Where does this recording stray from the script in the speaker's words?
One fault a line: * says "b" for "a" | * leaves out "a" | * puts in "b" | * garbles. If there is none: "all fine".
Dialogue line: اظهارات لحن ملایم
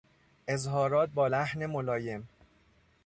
* puts in "با"